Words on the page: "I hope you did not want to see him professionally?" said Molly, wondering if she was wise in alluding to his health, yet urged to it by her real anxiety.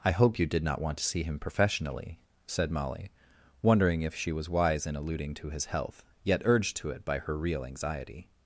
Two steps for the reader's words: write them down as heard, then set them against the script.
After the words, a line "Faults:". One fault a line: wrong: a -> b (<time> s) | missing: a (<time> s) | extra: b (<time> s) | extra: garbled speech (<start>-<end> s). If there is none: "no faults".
"I hope you did not want to see him professionally?" said Molly, wondering if she was wise in alluding to his health, yet urged to it by her real anxiety.
Faults:
no faults